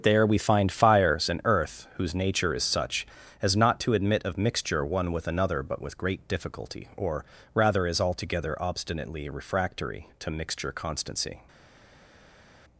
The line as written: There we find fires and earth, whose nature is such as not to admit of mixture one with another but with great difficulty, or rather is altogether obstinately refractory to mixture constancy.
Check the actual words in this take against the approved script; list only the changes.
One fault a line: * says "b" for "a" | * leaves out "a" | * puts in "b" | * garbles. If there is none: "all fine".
all fine